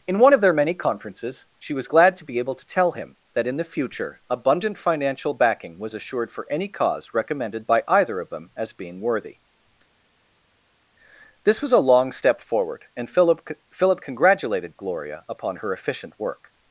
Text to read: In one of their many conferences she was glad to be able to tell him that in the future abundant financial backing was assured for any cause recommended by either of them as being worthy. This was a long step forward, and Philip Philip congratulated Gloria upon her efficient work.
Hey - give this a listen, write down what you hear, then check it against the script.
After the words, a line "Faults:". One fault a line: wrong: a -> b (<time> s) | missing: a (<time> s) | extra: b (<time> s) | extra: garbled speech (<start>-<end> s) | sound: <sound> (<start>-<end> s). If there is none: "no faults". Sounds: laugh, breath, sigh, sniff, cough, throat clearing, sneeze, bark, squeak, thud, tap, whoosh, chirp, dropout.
In one of their many conferences she was glad to be able to tell him that in the future abundant financial backing was assured for any cause recommended by either of them as being worthy. This was a long step forward, and Philip Philip congratulated Gloria upon her efficient work.
Faults:
no faults